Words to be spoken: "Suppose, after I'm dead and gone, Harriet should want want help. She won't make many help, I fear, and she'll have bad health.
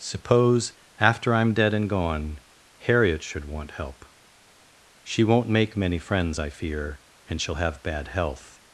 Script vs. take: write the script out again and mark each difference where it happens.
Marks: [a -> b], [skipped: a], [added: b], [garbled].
"Suppose, after I'm dead and gone, Harriet should want [skipped: want] help. She won't make many [help, -> friends] I fear, and she'll have bad health.